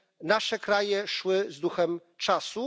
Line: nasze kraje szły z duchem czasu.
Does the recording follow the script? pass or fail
pass